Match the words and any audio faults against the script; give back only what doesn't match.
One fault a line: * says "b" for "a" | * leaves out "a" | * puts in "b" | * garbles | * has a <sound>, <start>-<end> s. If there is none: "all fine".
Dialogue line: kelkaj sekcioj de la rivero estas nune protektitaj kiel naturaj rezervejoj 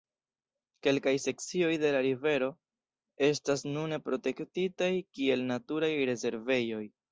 all fine